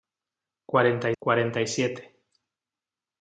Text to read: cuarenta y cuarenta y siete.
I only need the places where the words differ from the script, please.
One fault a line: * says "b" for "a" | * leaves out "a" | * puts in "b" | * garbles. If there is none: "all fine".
all fine